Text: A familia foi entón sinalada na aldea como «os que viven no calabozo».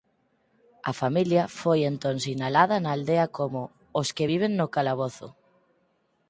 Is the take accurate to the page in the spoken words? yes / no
yes